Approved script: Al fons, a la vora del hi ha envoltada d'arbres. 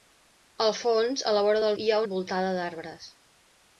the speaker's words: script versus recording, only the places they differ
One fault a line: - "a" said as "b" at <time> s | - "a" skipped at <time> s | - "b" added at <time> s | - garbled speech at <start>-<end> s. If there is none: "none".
none